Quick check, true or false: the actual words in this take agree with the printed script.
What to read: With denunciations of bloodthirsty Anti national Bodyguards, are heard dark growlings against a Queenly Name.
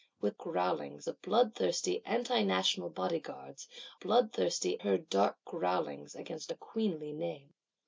false